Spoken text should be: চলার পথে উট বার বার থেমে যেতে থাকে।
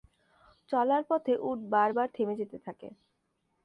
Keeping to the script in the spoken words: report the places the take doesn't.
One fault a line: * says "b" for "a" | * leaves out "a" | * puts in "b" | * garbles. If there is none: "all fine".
all fine